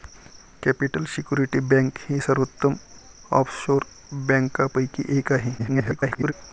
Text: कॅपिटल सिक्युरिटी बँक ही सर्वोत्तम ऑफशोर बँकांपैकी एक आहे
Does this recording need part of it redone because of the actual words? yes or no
yes